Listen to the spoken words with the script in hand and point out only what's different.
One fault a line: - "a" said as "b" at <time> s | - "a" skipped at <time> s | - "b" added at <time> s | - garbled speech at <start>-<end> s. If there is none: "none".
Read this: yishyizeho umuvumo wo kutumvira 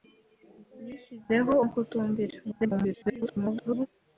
- "umuvumo" skipped at 1.5 s
- garbled speech at 2.4-3.9 s